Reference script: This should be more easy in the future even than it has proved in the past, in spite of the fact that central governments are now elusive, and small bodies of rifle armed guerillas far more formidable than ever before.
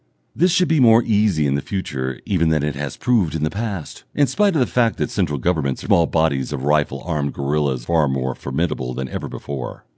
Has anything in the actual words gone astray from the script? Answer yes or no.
yes